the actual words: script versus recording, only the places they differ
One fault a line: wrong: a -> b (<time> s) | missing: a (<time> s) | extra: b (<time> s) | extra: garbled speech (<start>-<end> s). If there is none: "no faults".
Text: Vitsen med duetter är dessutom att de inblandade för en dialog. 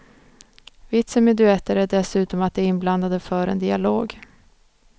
no faults